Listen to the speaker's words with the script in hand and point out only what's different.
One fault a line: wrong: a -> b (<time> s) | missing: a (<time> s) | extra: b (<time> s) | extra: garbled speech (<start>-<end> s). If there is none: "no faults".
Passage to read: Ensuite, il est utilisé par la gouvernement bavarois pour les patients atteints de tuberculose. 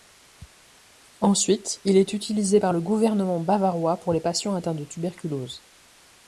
wrong: la -> le (2.7 s)